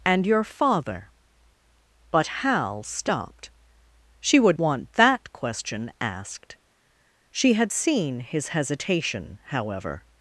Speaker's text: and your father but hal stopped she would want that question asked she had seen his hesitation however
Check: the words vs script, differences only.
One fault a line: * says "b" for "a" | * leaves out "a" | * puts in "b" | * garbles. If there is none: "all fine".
all fine